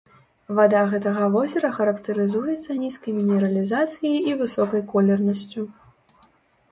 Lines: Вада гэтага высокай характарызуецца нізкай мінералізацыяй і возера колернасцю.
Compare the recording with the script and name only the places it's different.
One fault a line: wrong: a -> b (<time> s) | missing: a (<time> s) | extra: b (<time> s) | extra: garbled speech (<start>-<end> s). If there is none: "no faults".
wrong: высокай -> возера (1.3 s)
wrong: возера -> высокай (4.4 s)